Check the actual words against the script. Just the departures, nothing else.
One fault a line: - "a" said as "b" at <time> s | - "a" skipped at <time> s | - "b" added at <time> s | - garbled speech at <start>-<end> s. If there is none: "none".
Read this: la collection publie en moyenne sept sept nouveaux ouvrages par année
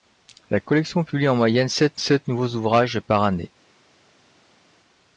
none